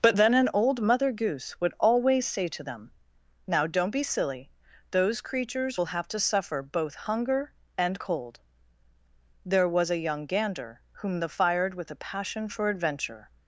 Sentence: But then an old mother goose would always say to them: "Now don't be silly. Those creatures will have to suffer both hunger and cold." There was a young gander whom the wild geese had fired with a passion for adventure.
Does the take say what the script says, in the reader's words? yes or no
no